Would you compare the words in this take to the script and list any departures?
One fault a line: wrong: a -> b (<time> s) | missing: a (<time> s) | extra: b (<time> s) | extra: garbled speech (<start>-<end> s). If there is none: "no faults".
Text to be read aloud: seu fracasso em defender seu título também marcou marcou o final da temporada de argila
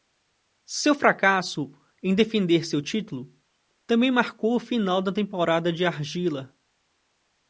missing: marcou (4.5 s)